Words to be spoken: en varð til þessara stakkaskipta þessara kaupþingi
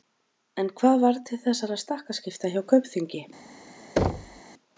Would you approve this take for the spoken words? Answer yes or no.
no